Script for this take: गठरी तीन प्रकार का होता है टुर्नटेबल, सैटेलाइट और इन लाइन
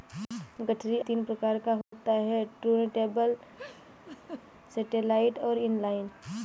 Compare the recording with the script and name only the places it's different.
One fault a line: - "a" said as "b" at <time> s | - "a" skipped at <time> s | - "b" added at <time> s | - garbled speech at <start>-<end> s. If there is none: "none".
none